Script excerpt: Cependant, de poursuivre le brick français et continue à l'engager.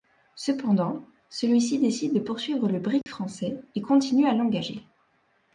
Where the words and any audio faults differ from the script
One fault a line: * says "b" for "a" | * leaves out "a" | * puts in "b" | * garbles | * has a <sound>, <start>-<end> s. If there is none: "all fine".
* puts in "celui ci décide"
* has a dropout, 3.0-3.1 s